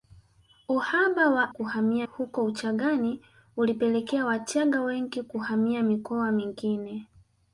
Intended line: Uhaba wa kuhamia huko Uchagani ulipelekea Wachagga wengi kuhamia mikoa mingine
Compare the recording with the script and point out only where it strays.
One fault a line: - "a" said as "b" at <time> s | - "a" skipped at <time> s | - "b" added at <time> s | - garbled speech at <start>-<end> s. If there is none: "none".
none